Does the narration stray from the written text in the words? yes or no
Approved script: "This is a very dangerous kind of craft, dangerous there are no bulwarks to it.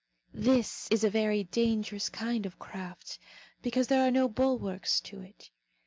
yes